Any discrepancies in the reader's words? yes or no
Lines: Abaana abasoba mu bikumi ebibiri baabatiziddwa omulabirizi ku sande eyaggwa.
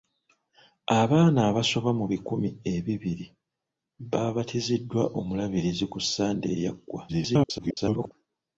yes